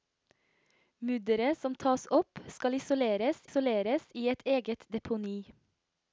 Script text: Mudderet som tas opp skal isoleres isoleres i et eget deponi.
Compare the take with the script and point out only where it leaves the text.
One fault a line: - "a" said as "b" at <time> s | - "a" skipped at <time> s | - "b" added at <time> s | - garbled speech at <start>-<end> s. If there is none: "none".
none